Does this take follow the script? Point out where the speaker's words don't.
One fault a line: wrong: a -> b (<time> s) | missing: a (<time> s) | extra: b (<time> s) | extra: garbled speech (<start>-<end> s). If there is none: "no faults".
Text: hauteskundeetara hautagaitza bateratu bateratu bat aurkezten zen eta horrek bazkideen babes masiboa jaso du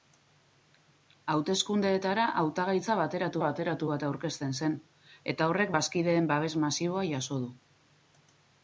no faults